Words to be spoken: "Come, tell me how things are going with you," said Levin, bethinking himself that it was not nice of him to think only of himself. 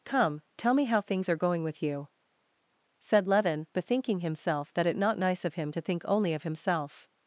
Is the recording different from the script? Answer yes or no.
yes